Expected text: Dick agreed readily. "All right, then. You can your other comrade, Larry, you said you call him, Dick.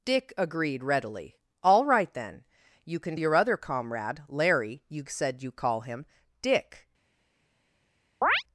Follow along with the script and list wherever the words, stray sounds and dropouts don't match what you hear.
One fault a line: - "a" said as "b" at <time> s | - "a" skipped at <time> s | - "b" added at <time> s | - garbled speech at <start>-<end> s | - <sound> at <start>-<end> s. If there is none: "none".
- chirp at 8.2-8.4 s